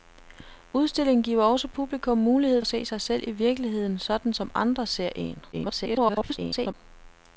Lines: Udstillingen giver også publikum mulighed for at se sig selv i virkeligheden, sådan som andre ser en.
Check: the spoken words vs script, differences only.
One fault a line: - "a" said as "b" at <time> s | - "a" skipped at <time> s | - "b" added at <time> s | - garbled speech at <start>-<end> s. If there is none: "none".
- "for" skipped at 2.6 s
- garbled speech at 5.5-6.7 s